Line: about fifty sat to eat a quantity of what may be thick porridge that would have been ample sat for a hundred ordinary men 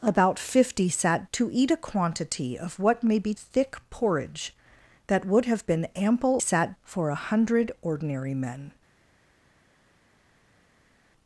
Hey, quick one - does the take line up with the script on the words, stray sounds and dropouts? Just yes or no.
yes